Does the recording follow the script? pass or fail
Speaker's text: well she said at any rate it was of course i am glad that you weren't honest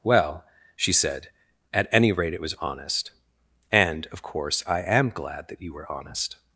fail